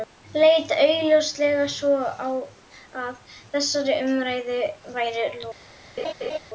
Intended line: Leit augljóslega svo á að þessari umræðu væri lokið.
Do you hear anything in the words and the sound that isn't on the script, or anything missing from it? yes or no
yes